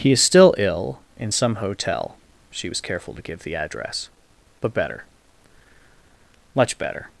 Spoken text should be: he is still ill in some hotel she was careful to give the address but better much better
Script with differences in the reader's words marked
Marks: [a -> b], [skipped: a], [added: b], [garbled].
he is still ill in some hotel she was careful to give the address but better much better